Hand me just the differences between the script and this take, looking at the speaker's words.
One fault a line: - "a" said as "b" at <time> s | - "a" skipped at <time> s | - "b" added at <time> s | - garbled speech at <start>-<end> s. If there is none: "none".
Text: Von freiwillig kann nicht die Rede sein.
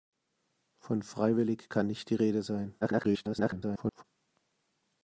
- garbled speech at 2.8-4.0 s